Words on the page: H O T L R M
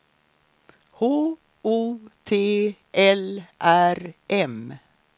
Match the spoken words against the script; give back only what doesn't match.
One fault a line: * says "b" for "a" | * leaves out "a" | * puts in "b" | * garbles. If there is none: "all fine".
all fine